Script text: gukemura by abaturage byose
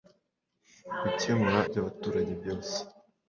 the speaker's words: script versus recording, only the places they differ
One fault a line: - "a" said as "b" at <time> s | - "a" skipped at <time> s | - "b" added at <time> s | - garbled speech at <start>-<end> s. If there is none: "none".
none